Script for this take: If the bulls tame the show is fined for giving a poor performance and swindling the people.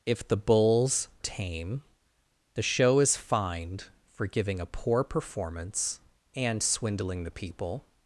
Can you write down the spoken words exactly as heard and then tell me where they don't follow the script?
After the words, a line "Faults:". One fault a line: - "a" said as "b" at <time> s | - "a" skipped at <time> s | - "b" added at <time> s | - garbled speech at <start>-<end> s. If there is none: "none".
If the bulls tame the show is fined for giving a poor performance and swindling the people.
Faults:
none